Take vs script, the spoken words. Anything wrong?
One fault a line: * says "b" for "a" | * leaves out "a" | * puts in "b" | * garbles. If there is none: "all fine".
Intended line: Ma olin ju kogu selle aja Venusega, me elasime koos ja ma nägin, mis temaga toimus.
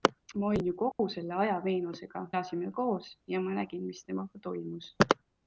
* leaves out "me"